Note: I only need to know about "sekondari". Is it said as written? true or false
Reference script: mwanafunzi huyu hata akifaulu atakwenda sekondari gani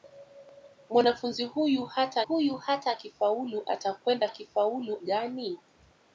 false